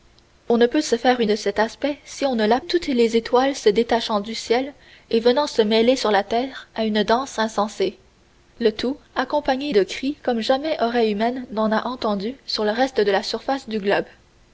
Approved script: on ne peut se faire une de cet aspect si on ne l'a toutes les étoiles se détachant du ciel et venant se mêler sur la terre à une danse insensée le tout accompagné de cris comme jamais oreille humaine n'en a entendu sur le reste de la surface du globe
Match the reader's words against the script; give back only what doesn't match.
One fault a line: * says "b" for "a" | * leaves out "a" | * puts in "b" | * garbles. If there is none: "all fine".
all fine